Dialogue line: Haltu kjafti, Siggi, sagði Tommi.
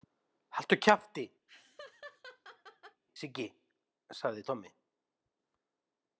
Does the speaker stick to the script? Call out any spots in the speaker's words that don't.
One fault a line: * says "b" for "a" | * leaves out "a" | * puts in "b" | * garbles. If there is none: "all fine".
all fine